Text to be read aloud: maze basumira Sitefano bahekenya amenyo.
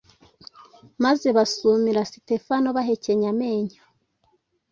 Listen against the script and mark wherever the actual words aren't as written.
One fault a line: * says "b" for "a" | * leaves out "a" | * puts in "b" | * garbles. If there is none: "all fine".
all fine